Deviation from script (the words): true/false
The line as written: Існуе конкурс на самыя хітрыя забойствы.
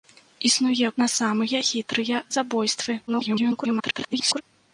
true